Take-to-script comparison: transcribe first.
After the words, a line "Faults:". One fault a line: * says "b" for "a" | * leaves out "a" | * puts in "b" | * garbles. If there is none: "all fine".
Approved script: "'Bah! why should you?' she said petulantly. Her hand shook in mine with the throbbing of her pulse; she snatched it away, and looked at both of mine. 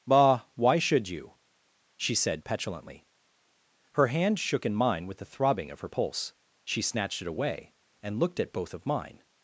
"'Bah! why should you?' she said petulantly. Her hand shook in mine with the throbbing of her pulse; she snatched it away, and looked at both of mine.
Faults:
all fine